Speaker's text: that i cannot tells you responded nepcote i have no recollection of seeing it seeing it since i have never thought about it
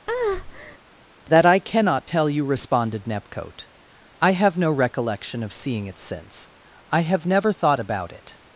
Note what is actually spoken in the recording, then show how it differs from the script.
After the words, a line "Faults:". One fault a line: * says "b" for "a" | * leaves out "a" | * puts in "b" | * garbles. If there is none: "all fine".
that i cannot tell you responded nepcote i have no recollection of seeing it since i have never thought about it
Faults:
* says "tell" for "tells"
* leaves out "seeing it"